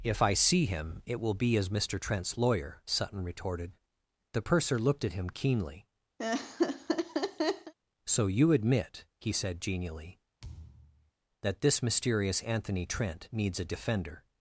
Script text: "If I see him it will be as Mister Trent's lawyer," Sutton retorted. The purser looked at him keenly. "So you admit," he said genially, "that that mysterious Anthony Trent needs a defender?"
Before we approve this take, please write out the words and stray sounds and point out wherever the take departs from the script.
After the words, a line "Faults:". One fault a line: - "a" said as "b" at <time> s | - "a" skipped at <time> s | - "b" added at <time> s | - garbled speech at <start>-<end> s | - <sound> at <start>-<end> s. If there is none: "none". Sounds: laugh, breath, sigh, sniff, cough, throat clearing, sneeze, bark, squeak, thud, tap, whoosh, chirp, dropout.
"If I see him it will be as Mister Trent's lawyer," Sutton retorted. The purser looked at him keenly. "So you admit," he said genially, "that this mysterious Anthony Trent needs a defender?"
Faults:
- laugh at 6.2-7.7 s
- thud at 10.4-11.1 s
- "that" said as "this" at 11.6 s